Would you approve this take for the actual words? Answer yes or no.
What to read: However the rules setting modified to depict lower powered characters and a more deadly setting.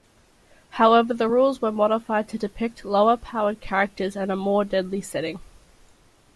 no